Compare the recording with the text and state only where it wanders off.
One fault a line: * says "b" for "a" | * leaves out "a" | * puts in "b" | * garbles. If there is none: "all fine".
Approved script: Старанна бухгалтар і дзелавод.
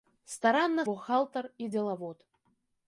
all fine